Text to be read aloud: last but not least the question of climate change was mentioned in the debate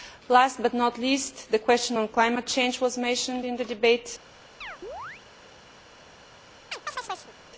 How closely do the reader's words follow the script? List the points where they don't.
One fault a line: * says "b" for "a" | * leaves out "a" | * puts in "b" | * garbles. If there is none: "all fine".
all fine